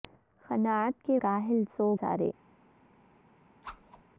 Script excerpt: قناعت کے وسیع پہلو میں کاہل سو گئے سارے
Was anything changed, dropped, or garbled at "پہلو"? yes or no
yes